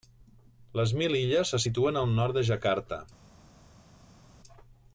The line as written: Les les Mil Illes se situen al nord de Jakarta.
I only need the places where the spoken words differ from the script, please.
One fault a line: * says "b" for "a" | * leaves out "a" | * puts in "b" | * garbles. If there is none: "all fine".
* leaves out "les"